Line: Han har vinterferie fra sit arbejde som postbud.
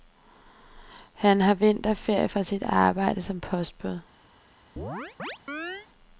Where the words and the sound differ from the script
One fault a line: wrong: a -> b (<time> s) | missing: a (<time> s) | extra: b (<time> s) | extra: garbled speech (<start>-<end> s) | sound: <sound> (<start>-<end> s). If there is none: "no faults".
sound: chirp (4.8-5.9 s)